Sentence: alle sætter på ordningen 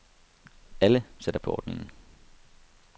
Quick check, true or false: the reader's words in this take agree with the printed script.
true